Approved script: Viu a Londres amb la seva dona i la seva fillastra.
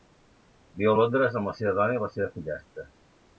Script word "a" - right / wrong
right